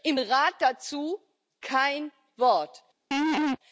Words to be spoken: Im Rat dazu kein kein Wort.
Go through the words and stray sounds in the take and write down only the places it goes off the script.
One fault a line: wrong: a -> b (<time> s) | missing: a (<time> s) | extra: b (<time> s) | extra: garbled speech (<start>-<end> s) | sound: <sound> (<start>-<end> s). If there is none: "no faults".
missing: kein (2.1 s)
sound: laugh (3.1-3.6 s)